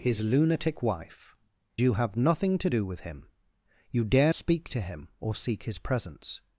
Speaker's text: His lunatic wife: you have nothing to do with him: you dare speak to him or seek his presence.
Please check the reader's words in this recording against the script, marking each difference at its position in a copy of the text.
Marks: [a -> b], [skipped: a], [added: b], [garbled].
His lunatic wife: you have nothing to do with him: you dare speak to him or seek his presence.